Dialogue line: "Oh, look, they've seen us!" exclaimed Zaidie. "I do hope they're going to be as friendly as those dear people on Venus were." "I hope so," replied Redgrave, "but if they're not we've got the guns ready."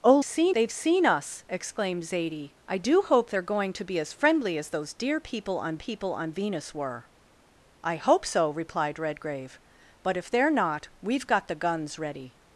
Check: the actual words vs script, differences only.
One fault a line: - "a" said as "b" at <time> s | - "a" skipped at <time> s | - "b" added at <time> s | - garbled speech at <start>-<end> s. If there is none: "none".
- "look" said as "seen" at 0.2 s
- "people on" added at 5.8 s